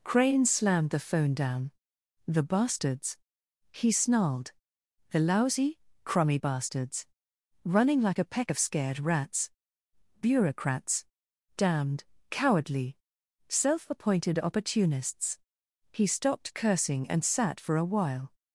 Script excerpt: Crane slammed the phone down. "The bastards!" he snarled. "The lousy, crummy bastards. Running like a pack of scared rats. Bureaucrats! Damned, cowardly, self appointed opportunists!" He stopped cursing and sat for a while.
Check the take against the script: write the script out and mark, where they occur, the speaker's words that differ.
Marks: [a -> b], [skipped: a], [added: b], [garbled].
Crane slammed the phone down. "The bastards!" he snarled. "The lousy, crummy bastards. Running like a [pack -> peck] of scared rats. Bureaucrats! Damned, cowardly, self appointed opportunists!" He stopped cursing and sat for a while.